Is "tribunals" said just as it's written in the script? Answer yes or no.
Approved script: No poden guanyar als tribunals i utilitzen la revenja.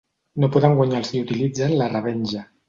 no